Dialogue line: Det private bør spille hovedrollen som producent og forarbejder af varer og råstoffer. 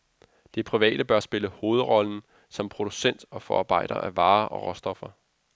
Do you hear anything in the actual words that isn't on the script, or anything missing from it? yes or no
no